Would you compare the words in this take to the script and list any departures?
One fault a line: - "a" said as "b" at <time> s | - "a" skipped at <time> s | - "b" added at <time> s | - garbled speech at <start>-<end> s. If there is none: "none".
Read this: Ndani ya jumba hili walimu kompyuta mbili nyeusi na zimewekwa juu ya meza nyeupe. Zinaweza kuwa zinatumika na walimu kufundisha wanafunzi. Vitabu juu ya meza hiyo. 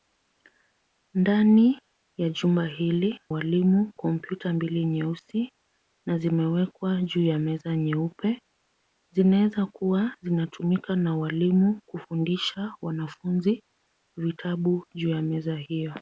none